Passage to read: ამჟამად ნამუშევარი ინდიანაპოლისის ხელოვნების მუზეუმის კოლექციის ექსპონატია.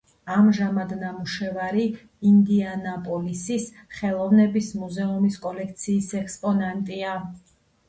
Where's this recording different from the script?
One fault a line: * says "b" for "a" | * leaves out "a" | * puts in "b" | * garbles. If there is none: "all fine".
all fine